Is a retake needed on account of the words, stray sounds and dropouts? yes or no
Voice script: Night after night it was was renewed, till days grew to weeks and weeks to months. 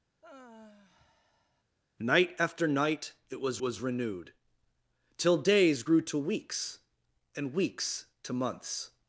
yes